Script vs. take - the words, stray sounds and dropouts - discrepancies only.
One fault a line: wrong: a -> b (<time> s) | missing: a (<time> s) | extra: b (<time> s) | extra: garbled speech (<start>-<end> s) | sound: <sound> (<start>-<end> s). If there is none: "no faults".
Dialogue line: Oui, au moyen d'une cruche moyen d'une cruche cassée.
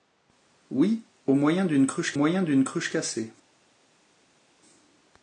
no faults